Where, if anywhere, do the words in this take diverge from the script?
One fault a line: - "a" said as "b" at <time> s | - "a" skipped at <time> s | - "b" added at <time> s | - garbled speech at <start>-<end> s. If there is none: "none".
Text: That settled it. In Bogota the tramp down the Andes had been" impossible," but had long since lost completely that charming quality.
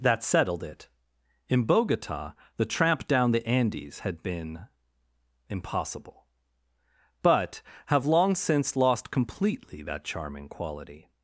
- "had" said as "have" at 7.9 s